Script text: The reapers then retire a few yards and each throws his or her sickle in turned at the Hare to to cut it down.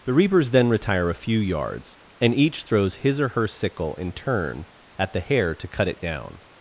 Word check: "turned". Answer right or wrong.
wrong